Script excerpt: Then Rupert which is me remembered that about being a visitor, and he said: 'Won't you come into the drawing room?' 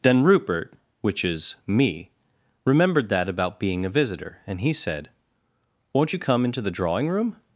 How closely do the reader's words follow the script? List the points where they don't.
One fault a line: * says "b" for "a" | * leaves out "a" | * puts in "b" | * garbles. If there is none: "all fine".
all fine